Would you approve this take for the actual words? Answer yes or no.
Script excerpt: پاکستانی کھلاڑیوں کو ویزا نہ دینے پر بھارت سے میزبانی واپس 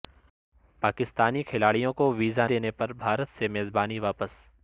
no